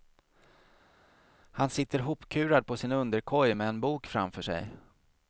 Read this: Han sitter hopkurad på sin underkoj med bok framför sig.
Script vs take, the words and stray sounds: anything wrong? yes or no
yes